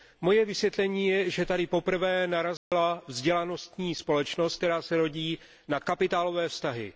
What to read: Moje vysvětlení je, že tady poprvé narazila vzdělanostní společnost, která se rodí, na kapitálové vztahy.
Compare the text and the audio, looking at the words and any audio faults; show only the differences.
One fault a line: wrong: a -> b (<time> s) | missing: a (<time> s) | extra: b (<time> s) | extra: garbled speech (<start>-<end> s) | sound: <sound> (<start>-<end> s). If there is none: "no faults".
sound: dropout (2.6-2.7 s)